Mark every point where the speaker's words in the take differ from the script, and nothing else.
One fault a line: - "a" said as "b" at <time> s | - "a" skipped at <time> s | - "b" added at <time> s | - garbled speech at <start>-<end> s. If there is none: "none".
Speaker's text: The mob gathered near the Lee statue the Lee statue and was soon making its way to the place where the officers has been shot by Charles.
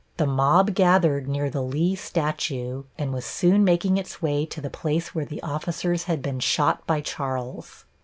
- "the Lee statue" skipped at 2.9 s
- "has" said as "had" at 6.0 s